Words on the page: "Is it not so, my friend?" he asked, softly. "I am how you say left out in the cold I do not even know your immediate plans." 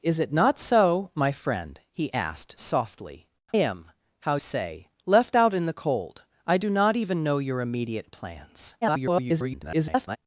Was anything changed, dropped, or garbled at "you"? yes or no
yes